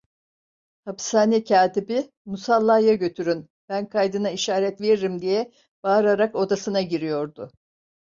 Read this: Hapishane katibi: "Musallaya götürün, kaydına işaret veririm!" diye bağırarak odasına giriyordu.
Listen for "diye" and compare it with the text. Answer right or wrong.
right